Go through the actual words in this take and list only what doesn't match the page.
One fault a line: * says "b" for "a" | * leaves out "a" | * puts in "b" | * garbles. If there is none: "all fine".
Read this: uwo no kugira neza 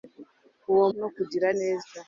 all fine